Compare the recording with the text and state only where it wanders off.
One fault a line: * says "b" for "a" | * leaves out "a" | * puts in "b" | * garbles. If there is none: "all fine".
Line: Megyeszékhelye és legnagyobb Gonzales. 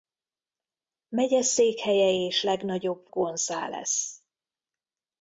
all fine